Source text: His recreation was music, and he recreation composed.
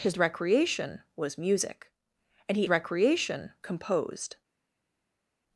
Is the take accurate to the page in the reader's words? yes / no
yes